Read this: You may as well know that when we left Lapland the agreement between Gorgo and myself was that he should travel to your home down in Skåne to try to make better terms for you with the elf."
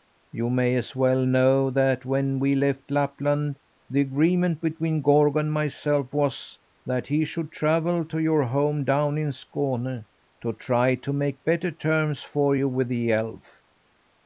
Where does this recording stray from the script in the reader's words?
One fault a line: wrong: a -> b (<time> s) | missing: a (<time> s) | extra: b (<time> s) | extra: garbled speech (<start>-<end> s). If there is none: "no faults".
no faults